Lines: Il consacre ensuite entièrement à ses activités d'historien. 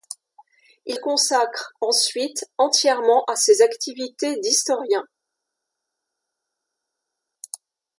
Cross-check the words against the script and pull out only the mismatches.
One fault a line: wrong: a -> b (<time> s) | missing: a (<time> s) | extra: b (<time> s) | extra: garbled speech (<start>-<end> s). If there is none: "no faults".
no faults